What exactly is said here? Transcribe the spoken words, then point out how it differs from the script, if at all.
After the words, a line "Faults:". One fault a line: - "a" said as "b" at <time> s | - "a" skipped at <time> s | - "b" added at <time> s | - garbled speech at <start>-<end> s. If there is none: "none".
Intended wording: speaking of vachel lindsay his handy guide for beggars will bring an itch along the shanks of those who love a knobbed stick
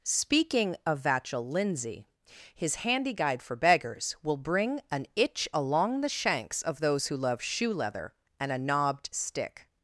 speaking of vachel lindsay his handy guide for beggars will bring an itch along the shanks of those who love shoe leather and a knobbed stick
Faults:
- "shoe leather and" added at 7.4 s